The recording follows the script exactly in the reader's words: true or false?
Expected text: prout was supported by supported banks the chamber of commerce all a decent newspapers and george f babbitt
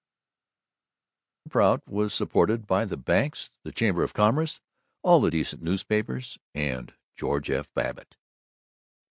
false